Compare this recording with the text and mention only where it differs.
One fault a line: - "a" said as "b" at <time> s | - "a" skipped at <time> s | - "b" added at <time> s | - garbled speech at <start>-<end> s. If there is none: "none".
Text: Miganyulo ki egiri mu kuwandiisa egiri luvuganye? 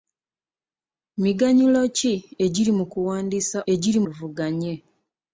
none